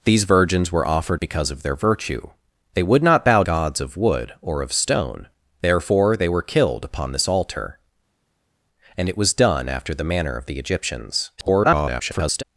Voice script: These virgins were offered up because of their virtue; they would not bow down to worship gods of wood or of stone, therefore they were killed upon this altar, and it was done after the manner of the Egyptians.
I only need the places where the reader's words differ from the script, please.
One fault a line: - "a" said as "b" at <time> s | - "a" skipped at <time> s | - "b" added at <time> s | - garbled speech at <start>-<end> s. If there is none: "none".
- "up" skipped at 1.2 s
- "down to worship" skipped at 3.4 s
- garbled speech at 11.4-12.4 s